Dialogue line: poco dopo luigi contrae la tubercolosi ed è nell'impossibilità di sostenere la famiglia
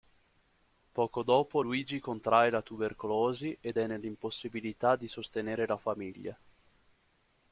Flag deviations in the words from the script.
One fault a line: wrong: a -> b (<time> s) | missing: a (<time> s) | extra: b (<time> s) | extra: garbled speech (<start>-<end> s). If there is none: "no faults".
no faults